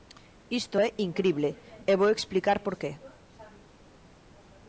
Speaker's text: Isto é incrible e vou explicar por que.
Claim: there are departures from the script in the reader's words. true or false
false